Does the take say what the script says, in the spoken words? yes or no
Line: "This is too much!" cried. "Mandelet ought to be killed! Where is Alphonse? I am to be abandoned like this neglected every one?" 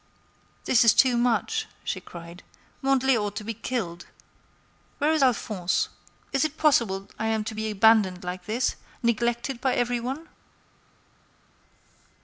no